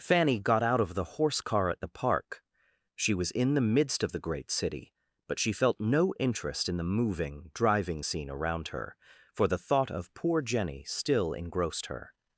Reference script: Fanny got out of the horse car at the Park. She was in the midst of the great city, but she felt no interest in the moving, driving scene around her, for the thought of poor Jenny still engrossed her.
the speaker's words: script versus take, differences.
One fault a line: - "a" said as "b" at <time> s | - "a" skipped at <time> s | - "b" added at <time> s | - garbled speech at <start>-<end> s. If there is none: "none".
none